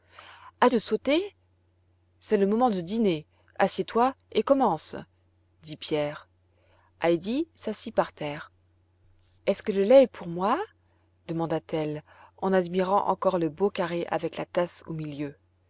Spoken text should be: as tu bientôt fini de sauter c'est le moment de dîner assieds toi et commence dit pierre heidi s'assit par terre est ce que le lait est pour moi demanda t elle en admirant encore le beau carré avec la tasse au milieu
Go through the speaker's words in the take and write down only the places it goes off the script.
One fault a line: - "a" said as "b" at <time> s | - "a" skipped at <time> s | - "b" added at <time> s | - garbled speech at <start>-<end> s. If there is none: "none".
- "tu bientôt fini" skipped at 0.7 s